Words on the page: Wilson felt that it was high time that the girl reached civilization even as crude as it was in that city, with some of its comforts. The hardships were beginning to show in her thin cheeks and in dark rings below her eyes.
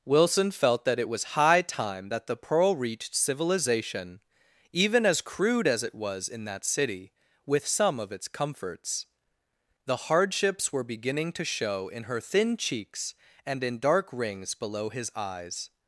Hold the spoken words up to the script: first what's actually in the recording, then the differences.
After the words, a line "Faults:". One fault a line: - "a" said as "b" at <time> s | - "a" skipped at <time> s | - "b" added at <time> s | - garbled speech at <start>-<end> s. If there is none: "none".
Wilson felt that it was high time that the pearl reached civilization even as crude as it was in that city, with some of its comforts. The hardships were beginning to show in her thin cheeks and in dark rings below his eyes.
Faults:
- "girl" said as "pearl" at 2.4 s
- "her" said as "his" at 14.9 s